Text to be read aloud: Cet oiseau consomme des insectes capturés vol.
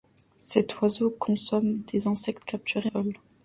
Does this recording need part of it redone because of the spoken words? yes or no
no